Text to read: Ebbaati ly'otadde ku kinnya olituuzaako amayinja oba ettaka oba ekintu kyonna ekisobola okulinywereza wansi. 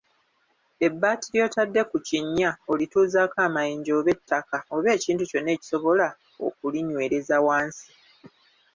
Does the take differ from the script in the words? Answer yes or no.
no